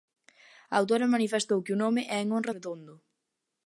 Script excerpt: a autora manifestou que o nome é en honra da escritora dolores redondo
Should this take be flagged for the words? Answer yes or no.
yes